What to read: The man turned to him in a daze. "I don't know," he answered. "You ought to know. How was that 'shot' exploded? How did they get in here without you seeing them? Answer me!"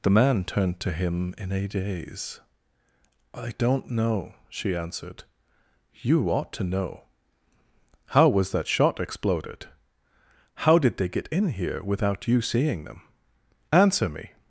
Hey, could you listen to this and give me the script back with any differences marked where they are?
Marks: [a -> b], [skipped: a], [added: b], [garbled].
The man turned to him in a daze. "I don't know," [he -> she] answered. "You ought to know. How was that 'shot' exploded? How did they get in here without you seeing them? Answer me!"